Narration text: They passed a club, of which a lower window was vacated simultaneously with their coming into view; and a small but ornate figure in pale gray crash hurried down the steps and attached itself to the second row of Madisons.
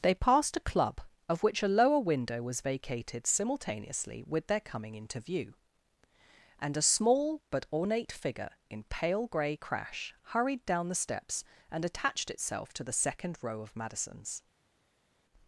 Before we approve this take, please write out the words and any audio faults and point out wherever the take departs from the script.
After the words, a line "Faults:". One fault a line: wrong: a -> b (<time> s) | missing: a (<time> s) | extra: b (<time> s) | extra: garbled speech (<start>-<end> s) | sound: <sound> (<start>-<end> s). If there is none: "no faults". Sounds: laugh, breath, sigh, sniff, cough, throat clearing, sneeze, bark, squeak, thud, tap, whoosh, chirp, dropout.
They passed a club, of which a lower window was vacated simultaneously with their coming into view; and a small but ornate figure in pale gray crash hurried down the steps and attached itself to the second row of Madisons.
Faults:
no faults